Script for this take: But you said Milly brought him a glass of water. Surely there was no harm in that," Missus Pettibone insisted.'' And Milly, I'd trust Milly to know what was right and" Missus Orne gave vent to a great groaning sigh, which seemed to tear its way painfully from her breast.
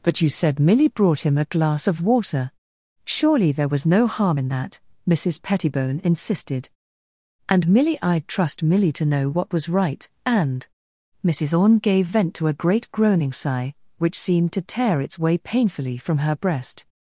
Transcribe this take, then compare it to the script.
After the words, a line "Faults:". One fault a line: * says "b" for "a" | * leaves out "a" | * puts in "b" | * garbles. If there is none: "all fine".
But you said Milly brought him a glass of water. Surely there was no harm in that," Missus Pettibone insisted.'' And Milly, I'd trust Milly to know what was right and" Missus Orne gave vent to a great groaning sigh, which seemed to tear its way painfully from her breast.
Faults:
all fine